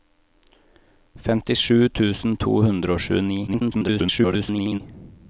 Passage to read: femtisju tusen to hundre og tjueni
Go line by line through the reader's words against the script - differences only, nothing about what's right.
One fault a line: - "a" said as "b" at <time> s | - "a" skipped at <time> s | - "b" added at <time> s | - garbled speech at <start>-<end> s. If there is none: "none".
- garbled speech at 3.5-4.8 s